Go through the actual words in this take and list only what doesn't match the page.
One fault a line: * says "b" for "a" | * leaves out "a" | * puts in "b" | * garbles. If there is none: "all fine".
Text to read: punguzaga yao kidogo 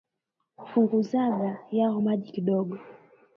* puts in "maji"